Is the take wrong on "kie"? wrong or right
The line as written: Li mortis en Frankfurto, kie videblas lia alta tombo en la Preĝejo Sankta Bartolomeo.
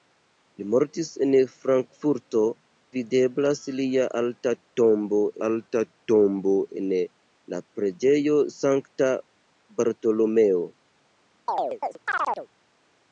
wrong